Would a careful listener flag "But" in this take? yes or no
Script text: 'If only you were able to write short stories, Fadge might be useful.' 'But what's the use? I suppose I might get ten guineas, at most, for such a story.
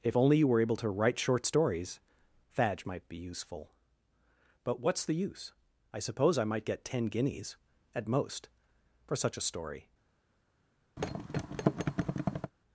no